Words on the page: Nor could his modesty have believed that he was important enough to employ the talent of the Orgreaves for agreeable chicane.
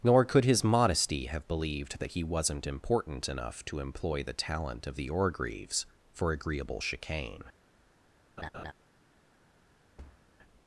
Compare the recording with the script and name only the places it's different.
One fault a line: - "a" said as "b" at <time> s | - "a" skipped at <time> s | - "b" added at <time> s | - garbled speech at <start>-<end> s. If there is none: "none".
- "was" said as "wasn't" at 2.2 s